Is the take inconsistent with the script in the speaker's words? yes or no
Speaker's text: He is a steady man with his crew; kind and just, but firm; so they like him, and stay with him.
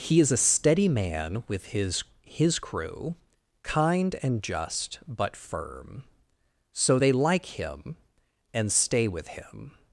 yes